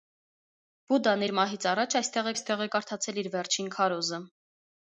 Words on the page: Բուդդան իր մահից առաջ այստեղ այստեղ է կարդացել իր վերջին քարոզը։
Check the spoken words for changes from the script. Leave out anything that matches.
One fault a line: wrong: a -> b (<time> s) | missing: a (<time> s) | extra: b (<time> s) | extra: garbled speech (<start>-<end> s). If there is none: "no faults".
no faults